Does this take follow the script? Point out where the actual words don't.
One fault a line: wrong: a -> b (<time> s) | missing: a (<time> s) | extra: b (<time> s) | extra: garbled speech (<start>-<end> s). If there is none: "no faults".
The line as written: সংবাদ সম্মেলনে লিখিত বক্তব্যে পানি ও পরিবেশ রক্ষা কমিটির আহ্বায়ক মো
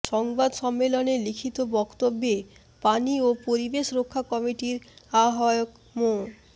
no faults